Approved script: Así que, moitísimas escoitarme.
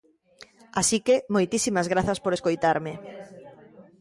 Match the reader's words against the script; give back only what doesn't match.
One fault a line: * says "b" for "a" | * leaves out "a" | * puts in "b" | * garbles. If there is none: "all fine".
* puts in "grazas por"